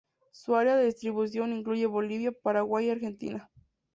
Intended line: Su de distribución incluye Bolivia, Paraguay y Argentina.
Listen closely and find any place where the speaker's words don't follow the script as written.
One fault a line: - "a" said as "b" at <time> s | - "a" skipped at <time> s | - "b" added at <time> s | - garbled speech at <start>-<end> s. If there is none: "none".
- "área" added at 0.6 s